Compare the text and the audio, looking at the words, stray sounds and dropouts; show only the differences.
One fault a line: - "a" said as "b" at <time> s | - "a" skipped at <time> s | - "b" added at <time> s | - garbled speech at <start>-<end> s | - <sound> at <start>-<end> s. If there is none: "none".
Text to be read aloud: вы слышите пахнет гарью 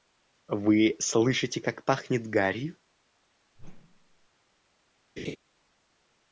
- "как" added at 1.6 s
- whoosh at 3.6-4.3 s
- laugh at 5.2-5.4 s